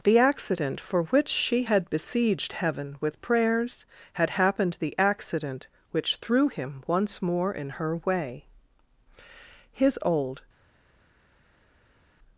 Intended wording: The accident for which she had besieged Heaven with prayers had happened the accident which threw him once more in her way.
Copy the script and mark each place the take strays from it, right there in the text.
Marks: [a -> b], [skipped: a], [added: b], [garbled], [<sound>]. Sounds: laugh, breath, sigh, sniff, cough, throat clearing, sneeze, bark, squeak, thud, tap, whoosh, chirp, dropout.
The accident for which she had besieged Heaven with prayers had happened the accident which threw him once more in her way. [added: His old]